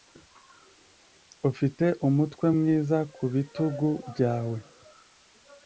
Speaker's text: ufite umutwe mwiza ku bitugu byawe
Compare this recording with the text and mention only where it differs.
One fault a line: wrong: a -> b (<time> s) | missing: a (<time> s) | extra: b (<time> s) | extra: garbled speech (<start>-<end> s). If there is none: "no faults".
no faults